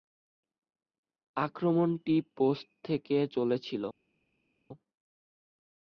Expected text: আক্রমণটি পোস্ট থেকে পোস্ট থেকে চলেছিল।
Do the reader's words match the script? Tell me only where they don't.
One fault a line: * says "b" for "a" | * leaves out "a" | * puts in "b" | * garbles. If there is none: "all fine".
* leaves out "পোস্ট থেকে"